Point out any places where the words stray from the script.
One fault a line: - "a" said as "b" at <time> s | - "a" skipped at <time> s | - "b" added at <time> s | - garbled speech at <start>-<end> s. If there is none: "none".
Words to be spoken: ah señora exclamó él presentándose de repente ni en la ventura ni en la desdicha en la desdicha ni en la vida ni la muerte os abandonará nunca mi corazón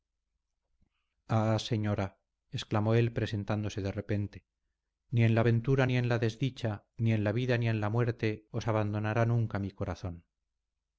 - "en la desdicha" skipped at 6.9 s
- "en" added at 7.7 s